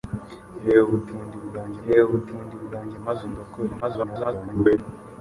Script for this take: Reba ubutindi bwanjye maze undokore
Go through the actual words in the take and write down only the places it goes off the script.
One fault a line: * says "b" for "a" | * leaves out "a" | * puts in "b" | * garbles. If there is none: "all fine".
* puts in "reba ubutindi bwanjye"
* garbles